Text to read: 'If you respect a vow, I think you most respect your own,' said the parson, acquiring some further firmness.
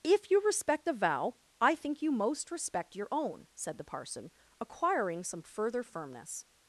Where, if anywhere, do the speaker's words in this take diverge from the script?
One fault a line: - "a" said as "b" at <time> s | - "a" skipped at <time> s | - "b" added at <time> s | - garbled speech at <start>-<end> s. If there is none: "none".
none